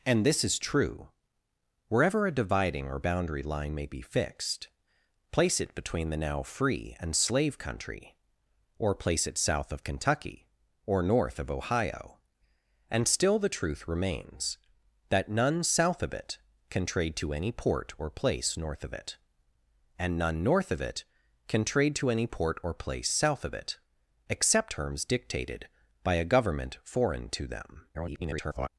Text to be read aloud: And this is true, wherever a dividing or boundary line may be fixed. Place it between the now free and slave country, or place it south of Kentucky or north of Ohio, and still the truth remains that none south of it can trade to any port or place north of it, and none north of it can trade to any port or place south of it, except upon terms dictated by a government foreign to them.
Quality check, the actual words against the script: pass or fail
fail